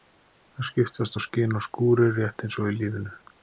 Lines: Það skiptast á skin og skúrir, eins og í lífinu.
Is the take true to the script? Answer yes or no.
no